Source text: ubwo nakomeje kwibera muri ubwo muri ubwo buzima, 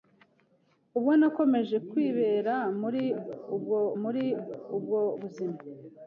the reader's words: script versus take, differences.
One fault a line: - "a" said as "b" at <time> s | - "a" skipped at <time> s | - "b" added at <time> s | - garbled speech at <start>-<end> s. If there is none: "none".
none